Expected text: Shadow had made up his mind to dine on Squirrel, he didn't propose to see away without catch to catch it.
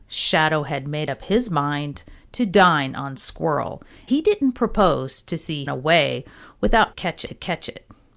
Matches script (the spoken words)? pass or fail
pass